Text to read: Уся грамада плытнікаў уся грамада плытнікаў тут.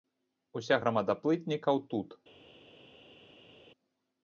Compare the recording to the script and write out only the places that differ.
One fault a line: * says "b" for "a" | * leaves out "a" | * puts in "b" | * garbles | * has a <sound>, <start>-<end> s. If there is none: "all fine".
* leaves out "уся грамада плытнікаў"